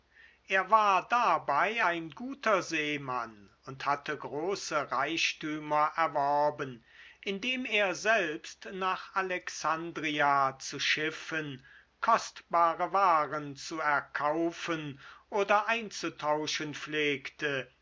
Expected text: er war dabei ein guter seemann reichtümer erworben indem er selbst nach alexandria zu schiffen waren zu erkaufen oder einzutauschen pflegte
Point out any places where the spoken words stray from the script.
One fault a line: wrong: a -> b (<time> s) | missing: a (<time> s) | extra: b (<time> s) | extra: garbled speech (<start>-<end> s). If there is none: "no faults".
extra: und hatte große (3.6 s)
extra: kostbare (12.0 s)